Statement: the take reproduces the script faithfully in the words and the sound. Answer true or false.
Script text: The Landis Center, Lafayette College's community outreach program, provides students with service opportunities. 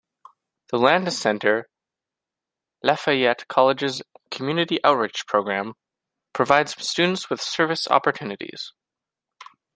true